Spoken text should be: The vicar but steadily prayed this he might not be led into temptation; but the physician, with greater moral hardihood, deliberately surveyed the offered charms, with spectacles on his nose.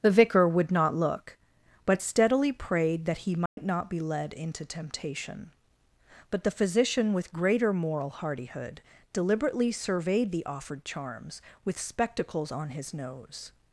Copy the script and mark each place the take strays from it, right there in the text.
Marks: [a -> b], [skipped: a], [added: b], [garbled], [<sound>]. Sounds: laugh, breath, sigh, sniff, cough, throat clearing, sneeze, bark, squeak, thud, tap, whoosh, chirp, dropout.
The vicar [added: would not look] but steadily prayed [this -> that] he might [dropout] not be led into temptation; but the physician, with greater moral hardihood, deliberately surveyed the offered charms, with spectacles on his nose.